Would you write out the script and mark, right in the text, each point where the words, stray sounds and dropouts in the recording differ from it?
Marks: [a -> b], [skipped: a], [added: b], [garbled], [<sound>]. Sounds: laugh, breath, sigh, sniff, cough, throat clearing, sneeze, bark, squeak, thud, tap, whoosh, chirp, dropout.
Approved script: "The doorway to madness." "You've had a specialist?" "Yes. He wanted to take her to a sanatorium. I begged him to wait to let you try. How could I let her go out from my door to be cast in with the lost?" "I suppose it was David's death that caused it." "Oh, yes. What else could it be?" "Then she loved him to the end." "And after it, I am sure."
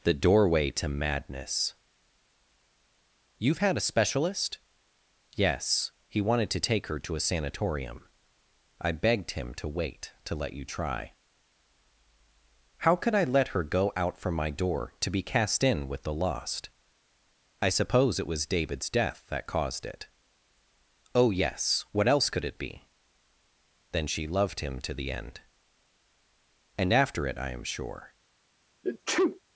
"The doorway to madness." "You've had a specialist?" "Yes. He wanted to take her to a sanatorium. I begged him to wait to let you try. How could I let her go out from my door to be cast in with the lost?" "I suppose it was David's death that caused it." "Oh, yes. What else could it be?" "Then she loved him to the end." "And after it, I am sure." [sneeze]